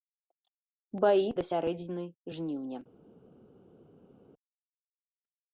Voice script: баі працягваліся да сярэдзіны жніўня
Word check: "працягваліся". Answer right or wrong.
wrong